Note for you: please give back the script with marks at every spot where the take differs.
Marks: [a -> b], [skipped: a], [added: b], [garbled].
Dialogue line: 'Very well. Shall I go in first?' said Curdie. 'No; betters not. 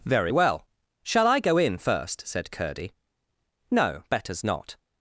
'Very well. Shall I go in first?' said Curdie. 'No; betters not.